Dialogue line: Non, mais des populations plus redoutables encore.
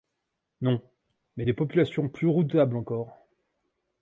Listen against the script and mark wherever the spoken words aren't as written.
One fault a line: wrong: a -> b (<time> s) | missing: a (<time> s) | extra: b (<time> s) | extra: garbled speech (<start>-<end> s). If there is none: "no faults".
no faults